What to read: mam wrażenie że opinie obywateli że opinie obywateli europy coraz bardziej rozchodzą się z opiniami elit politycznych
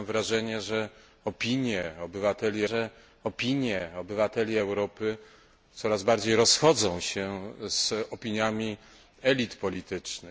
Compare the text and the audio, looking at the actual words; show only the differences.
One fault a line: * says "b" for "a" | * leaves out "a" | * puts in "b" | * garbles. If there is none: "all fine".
all fine